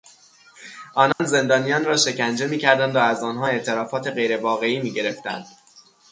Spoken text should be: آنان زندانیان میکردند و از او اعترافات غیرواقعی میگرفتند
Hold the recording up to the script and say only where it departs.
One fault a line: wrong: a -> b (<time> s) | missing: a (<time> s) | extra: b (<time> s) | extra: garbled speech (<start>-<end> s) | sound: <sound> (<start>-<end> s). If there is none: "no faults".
sound: dropout (1.1-1.2 s)
extra: را شکنجه (1.9 s)
wrong: او -> آنها (3.2 s)